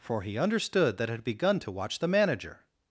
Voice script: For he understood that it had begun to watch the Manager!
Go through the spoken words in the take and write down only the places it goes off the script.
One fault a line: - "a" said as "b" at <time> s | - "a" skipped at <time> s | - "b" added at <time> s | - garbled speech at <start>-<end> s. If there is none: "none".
none